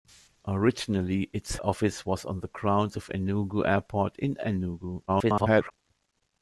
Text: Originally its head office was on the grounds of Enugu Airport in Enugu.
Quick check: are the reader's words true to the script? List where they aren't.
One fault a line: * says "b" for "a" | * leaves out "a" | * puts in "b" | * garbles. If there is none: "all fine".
* leaves out "head"
* garbles